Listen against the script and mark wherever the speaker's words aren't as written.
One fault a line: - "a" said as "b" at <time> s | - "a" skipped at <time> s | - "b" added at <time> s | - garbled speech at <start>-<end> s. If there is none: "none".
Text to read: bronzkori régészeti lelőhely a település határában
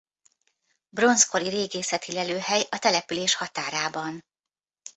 none